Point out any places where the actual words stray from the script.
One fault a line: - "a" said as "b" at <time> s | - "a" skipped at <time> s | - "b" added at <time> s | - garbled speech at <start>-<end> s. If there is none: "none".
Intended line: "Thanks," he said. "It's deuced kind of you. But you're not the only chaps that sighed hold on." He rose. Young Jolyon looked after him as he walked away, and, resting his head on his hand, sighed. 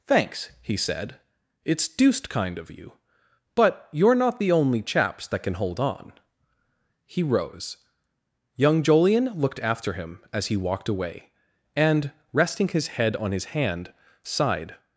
- "sighed" said as "can" at 5.4 s